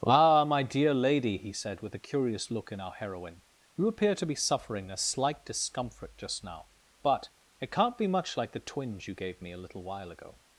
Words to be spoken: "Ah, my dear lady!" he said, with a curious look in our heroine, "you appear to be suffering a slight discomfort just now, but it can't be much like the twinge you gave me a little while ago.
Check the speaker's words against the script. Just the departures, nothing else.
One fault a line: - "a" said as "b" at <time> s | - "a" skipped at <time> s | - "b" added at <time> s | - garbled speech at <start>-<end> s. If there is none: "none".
none